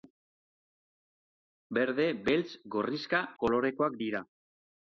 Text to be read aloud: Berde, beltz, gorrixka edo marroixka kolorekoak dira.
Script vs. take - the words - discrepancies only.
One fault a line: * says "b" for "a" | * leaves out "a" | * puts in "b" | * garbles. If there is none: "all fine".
* leaves out "edo marroixka"